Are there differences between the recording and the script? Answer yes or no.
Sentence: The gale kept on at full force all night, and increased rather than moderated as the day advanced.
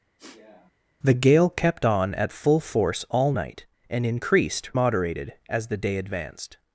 yes